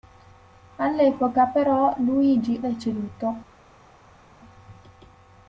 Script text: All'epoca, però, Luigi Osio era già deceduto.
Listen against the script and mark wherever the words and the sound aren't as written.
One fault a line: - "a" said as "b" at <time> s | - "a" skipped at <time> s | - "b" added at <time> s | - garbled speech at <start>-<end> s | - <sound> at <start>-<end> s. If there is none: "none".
- "Osio era già" skipped at 2.6 s